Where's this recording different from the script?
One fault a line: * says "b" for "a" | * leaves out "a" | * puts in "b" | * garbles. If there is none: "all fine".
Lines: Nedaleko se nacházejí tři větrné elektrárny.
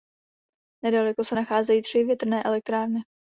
all fine